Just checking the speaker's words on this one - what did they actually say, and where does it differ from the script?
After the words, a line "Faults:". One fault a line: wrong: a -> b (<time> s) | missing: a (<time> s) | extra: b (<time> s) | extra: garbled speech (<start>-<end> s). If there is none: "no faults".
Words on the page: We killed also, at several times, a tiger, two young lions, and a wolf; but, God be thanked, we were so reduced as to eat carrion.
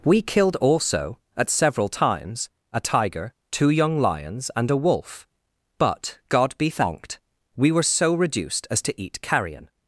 We killed also, at several times, a tiger, two young lions, and a wolf; but, God be thanked, we were so reduced as to eat carrion.
Faults:
no faults